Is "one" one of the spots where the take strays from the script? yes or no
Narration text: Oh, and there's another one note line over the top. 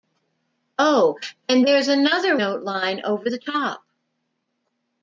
yes